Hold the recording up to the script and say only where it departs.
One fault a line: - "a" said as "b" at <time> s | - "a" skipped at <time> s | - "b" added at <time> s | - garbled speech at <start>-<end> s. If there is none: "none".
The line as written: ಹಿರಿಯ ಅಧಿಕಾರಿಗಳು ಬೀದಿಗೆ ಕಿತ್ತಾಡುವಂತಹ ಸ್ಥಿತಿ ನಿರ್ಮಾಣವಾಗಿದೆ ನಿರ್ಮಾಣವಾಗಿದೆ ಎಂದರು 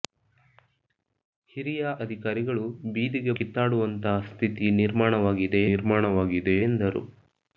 none